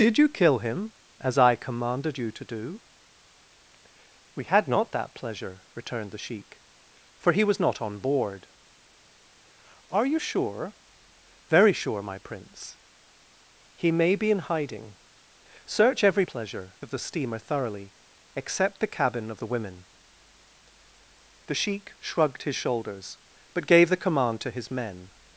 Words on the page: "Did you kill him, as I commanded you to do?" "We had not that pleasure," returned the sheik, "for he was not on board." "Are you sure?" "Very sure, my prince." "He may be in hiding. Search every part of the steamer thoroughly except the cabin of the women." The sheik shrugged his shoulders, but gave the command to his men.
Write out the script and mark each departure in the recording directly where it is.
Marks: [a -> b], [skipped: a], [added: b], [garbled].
"Did you kill him, as I commanded you to do?" "We had not that pleasure," returned the sheik, "for he was not on board." "Are you sure?" "Very sure, my prince." "He may be in hiding. Search every [part -> pleasure] of the steamer thoroughly except the cabin of the women." The sheik shrugged his shoulders, but gave the command to his men.